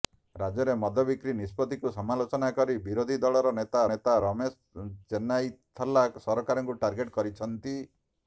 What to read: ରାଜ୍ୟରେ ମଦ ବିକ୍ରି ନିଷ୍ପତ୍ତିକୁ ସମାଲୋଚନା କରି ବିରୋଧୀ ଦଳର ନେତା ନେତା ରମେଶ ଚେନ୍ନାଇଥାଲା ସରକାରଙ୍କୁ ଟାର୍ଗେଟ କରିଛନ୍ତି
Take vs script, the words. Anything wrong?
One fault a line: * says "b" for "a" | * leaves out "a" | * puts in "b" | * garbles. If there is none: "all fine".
all fine